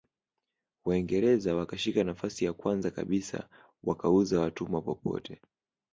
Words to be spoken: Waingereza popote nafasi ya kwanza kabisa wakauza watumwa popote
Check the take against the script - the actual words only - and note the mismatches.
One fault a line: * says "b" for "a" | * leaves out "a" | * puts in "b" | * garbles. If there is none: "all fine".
* says "wakashika" for "popote"